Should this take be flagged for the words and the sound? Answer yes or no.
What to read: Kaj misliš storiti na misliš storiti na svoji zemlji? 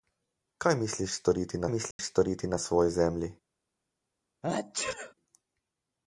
yes